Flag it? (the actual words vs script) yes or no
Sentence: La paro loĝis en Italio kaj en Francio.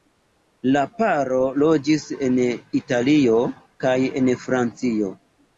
no